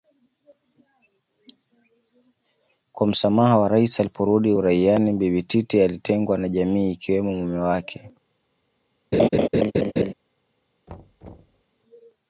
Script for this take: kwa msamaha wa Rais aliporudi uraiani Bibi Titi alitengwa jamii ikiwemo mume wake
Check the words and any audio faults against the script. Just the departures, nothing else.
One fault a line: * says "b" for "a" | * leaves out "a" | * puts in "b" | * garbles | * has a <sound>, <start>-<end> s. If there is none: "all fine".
* puts in "na"
* has a laugh, 9.1-10.1 s
* has a thud, 10.9-11.6 s